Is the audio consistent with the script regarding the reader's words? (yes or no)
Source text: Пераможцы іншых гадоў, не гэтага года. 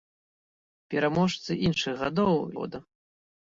no